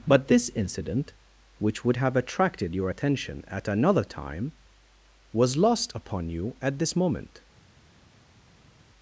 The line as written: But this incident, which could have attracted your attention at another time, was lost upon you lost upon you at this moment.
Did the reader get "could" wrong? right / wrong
wrong